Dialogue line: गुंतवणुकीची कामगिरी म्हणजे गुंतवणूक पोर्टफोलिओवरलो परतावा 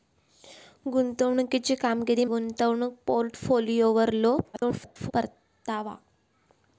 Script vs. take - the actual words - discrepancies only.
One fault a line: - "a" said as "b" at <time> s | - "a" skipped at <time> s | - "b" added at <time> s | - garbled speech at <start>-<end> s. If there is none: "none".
- "म्हणजे" skipped at 2.2 s
- garbled speech at 4.5-5.1 s